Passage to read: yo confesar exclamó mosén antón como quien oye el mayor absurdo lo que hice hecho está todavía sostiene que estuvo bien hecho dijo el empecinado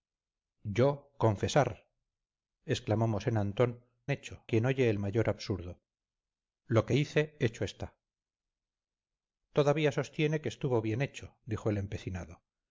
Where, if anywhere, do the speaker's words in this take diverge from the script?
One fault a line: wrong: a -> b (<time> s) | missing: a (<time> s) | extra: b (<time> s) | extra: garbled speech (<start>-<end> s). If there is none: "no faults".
wrong: como -> hecho (4.1 s)